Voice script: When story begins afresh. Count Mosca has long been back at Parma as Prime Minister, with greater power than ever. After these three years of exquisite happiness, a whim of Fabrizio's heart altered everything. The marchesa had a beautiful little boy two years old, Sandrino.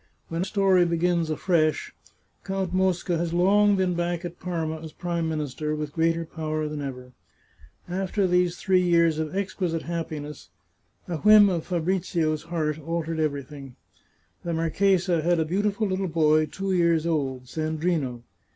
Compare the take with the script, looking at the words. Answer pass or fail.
pass